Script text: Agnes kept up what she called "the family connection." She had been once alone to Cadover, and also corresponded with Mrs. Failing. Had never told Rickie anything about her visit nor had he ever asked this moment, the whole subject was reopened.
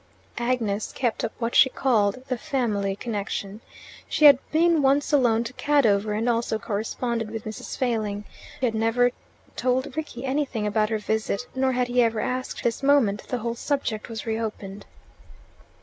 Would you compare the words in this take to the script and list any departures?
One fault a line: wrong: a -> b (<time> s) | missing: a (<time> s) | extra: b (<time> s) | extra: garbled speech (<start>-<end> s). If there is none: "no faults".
no faults